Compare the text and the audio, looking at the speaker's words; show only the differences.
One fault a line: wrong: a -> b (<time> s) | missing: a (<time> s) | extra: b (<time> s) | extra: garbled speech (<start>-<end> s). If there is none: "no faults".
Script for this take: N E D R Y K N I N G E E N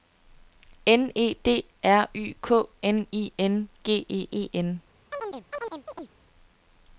no faults